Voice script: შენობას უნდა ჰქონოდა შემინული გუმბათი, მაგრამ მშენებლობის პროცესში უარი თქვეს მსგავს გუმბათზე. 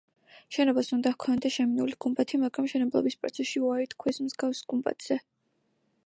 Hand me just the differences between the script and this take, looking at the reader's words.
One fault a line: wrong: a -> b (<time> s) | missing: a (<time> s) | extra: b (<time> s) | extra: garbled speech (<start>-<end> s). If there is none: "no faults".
no faults